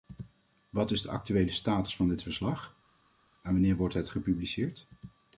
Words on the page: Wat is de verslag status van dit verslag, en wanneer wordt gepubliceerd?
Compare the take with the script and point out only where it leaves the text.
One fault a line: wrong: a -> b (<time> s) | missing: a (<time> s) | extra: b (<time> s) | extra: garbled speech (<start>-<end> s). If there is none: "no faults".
wrong: verslag -> actuele (1.1 s)
extra: het (3.9 s)